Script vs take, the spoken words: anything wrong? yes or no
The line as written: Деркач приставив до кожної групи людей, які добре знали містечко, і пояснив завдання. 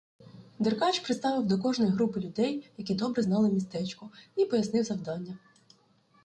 no